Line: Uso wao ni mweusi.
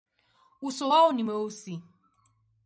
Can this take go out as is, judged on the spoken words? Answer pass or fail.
pass